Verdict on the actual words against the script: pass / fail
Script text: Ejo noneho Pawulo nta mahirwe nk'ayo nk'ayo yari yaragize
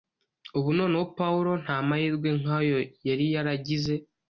fail